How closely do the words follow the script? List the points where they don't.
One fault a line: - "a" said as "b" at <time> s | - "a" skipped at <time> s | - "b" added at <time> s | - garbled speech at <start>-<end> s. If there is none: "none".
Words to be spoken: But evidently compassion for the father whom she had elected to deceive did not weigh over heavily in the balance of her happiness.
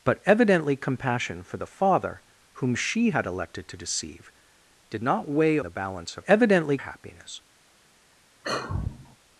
- "over heavily in" skipped at 5.6 s
- "her" said as "evidently" at 6.3 s